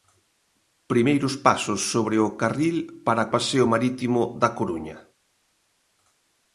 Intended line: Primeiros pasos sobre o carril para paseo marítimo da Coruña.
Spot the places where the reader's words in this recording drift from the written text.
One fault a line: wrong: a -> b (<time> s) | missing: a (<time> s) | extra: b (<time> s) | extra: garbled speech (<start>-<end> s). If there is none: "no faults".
no faults